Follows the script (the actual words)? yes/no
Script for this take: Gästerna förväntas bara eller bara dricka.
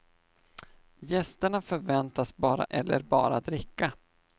yes